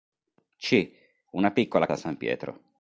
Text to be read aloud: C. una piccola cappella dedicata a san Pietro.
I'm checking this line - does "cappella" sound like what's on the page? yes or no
no